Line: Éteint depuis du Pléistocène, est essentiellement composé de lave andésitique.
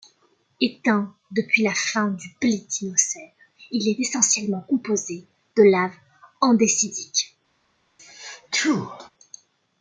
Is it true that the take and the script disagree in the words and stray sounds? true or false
true